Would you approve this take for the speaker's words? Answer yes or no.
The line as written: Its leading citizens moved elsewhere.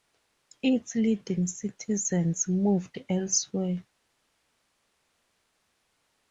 yes